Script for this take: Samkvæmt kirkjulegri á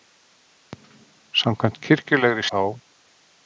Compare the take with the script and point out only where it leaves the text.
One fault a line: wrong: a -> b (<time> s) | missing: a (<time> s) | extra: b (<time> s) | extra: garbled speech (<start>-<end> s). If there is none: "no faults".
no faults